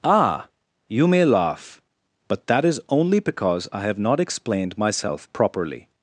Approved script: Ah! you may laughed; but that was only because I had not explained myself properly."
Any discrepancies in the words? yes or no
yes